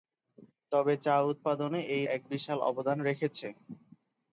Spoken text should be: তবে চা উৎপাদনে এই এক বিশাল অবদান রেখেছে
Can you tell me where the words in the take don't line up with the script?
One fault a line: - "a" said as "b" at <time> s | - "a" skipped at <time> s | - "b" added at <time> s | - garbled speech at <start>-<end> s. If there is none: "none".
none